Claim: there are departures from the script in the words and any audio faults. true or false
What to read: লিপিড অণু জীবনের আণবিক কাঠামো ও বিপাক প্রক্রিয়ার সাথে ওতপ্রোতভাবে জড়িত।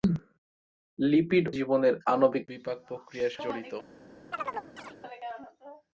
true